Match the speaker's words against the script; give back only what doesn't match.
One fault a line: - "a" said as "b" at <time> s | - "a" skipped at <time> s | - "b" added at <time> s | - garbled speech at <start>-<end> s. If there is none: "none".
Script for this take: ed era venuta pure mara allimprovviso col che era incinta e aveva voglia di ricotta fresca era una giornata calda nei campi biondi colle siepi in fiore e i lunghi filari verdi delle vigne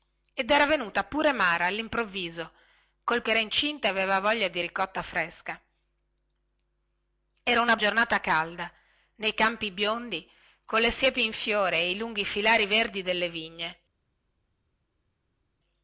none